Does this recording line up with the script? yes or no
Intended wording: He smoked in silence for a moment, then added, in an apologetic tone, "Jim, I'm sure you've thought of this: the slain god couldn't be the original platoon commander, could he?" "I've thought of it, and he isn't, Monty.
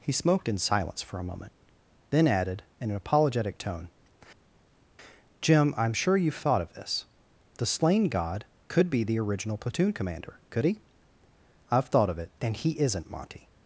no